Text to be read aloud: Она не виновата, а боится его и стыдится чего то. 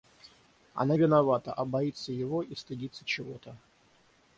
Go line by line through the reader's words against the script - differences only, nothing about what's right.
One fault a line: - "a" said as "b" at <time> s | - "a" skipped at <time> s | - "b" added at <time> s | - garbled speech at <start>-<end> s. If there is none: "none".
- "не" skipped at 1.0 s